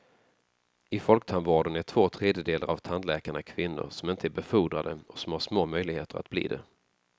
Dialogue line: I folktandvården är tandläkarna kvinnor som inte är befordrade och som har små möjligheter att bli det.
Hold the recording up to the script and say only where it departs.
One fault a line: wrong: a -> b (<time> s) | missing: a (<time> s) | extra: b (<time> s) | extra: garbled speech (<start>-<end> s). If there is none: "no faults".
extra: två tredjedelar av (1.8 s)